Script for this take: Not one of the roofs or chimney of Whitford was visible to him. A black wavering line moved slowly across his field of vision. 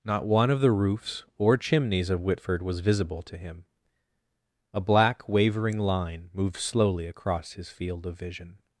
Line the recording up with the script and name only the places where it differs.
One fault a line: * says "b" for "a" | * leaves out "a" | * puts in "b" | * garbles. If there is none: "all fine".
* says "chimneys" for "chimney"